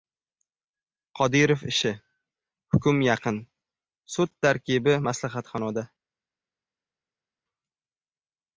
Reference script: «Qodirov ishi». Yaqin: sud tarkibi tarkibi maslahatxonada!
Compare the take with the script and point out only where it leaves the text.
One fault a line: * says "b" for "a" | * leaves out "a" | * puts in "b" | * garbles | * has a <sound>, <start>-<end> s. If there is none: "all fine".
* puts in "Hukm"
* leaves out "tarkibi"